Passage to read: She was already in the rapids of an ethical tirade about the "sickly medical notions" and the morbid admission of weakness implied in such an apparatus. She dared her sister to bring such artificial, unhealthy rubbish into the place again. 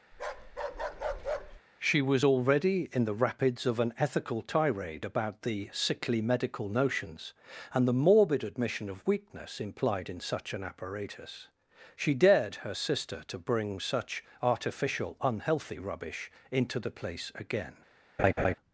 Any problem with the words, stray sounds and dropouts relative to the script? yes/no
yes